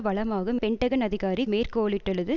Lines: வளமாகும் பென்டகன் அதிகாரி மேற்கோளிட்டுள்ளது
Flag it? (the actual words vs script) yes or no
no